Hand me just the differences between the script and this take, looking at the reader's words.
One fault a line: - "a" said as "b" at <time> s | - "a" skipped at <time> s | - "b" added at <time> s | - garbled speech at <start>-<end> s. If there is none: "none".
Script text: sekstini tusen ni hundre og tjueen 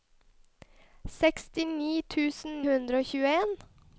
- "ni" skipped at 2.6 s